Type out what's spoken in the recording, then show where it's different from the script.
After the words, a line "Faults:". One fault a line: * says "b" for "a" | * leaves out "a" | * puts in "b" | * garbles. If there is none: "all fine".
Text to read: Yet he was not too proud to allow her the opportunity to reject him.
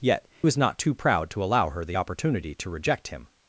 Yet was not too proud to allow her the opportunity to reject him.
Faults:
* leaves out "he"